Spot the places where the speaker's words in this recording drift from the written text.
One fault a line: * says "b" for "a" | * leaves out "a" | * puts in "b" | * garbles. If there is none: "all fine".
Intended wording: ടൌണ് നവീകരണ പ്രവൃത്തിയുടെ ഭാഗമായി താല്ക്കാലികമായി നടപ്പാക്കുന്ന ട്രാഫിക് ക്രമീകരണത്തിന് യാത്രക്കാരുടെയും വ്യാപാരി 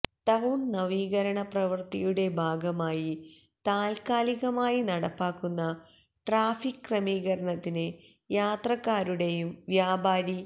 all fine